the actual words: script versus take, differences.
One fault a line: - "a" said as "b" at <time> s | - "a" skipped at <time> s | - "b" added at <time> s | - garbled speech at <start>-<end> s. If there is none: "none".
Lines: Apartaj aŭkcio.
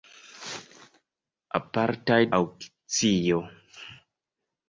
none